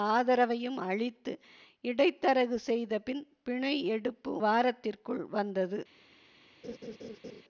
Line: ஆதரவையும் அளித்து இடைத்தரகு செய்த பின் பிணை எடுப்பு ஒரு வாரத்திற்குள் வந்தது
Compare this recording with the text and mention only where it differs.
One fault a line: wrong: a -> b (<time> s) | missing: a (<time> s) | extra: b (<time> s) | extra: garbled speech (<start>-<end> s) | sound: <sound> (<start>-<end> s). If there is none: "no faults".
missing: ஒரு (4.3 s)
sound: laugh (6.6-7.4 s)